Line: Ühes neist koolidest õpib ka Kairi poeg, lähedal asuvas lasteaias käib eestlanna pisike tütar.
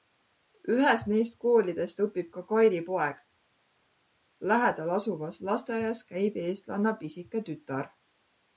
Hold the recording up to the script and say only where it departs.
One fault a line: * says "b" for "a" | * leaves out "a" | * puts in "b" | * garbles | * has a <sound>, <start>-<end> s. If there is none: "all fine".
all fine